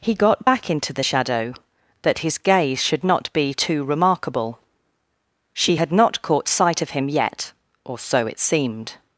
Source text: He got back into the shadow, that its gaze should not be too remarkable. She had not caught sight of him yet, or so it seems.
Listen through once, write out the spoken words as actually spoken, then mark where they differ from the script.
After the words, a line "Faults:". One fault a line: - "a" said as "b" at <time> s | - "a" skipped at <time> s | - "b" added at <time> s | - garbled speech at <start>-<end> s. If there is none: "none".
He got back into the shadow, that his gaze should not be too remarkable. She had not caught sight of him yet, or so it seemed.
Faults:
- "its" said as "his" at 2.2 s
- "seems" said as "seemed" at 8.4 s